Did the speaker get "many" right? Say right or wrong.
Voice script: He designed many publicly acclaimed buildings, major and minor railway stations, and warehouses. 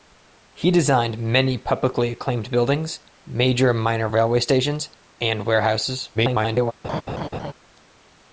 right